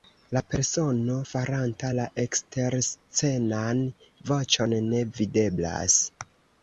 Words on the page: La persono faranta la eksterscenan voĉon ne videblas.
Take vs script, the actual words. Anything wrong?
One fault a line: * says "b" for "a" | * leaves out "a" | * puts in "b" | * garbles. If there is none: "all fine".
all fine